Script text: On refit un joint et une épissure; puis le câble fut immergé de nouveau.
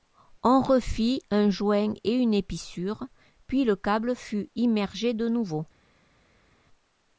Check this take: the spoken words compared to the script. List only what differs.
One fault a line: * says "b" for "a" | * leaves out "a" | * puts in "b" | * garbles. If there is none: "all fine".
all fine